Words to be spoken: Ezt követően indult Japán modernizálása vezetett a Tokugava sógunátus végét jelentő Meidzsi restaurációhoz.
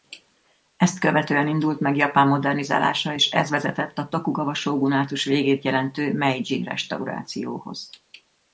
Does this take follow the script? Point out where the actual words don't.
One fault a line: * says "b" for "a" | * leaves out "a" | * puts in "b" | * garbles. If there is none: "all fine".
* puts in "meg"
* puts in "és ez"